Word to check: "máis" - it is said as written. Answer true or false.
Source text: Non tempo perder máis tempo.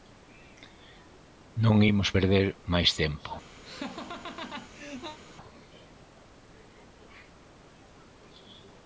true